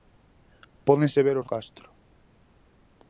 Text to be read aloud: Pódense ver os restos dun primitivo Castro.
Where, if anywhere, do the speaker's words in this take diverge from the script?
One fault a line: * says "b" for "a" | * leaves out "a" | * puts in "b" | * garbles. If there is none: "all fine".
* leaves out "restos dun primitivo"